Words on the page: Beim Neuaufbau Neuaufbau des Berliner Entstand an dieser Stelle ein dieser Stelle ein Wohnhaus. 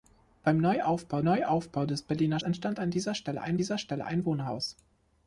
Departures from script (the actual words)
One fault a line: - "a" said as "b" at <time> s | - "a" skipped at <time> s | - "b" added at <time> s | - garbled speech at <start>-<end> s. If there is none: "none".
none